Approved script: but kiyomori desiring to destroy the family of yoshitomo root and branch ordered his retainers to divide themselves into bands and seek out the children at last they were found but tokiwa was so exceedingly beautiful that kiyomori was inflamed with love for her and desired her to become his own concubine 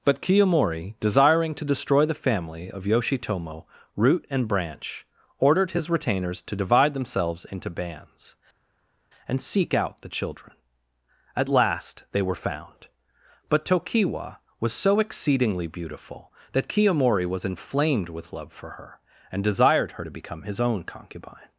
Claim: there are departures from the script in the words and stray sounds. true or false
false